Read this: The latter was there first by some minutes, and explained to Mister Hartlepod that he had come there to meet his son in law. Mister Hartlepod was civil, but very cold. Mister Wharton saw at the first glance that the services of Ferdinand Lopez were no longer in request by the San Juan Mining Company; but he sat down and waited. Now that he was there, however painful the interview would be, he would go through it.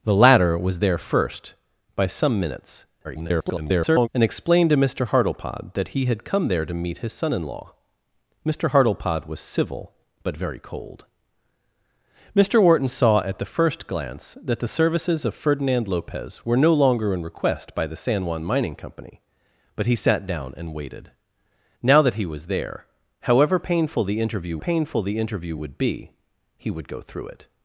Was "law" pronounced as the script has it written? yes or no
yes